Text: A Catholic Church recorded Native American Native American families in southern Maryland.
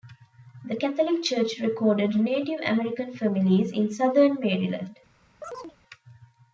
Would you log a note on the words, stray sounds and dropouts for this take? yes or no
yes